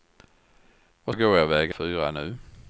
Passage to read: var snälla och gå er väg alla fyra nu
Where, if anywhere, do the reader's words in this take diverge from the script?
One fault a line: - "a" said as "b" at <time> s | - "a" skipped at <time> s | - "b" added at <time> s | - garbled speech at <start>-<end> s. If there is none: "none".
- "snälla" skipped at 1.1 s
- "alla" skipped at 1.7 s